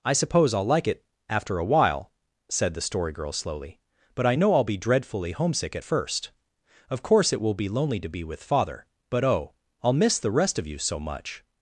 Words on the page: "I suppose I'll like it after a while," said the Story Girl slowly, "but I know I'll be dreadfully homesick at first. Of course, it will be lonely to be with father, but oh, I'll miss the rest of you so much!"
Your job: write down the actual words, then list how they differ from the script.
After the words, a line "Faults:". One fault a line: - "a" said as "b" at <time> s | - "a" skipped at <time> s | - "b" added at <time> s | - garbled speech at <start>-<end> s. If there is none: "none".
"I suppose I'll like it after a while," said the Story Girl slowly, "but I know I'll be dreadfully homesick at first. Of course, it will be lonely to be with father, but oh, I'll miss the rest of you so much!"
Faults:
none